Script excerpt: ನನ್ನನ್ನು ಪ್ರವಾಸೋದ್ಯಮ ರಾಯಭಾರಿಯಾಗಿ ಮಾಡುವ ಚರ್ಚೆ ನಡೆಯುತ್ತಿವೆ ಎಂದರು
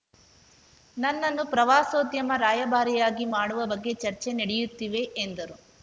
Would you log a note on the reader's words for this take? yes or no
yes